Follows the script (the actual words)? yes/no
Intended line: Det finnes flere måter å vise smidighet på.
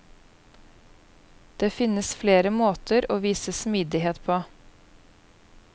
yes